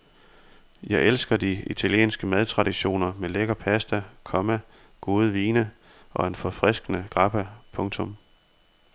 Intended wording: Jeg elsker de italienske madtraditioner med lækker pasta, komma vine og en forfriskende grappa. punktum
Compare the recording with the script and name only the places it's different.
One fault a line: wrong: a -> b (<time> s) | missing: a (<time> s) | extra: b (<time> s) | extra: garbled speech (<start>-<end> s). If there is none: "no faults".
extra: gode (5.0 s)